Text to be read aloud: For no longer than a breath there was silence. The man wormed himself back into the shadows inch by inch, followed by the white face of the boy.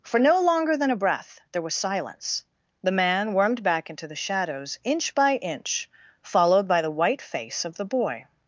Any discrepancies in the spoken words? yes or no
yes